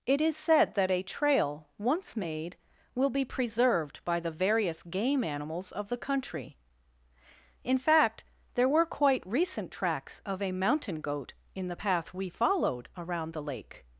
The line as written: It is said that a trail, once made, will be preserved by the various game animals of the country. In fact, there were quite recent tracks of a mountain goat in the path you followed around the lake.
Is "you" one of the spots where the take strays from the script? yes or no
yes